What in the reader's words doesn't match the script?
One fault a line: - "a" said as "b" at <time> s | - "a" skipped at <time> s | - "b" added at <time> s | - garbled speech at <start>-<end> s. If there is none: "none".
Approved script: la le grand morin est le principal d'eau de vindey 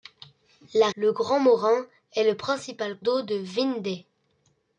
none